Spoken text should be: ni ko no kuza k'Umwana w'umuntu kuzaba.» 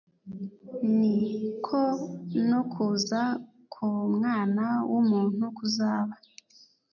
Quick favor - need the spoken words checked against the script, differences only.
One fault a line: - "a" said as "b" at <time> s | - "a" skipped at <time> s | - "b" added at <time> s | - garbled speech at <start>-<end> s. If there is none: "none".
none